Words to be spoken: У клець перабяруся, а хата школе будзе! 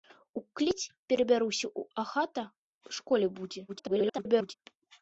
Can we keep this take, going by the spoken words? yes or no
no